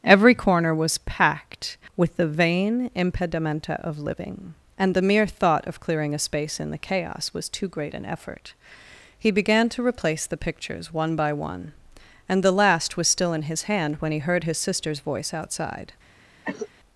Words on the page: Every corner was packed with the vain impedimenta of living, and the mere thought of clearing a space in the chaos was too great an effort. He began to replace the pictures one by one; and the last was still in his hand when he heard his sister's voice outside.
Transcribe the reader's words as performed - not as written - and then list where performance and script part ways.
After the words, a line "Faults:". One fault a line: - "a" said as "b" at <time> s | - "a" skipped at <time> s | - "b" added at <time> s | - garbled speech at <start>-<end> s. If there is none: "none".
Every corner was packed with the vain impedimenta of living, and the mere thought of clearing a space in the chaos was too great an effort. He began to replace the pictures one by one; and the last was still in his hand when he heard his sister's voice outside.
Faults:
none